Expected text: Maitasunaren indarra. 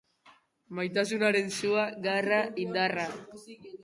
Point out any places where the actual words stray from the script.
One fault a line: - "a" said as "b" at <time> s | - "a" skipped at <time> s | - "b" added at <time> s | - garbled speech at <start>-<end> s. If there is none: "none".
- "sua garra" added at 1.6 s